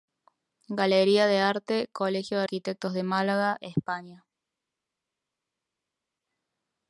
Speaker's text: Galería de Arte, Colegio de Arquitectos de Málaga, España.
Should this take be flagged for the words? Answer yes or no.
no